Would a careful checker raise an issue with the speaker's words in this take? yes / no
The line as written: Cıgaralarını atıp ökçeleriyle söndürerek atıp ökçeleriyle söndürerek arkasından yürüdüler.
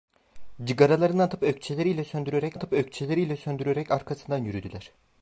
no